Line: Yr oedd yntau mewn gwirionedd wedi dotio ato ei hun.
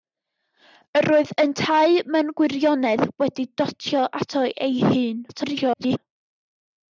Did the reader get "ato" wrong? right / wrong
right